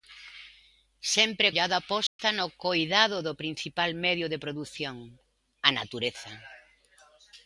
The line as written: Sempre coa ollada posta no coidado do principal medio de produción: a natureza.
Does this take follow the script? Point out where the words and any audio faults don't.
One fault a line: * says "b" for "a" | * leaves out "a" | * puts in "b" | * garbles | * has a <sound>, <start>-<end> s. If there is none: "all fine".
* leaves out "coa"
* has a dropout, 2.1-2.2 s